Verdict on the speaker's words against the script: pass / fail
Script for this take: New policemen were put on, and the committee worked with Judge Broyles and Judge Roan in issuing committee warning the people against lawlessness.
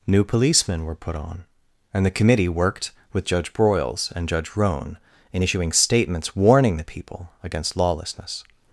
fail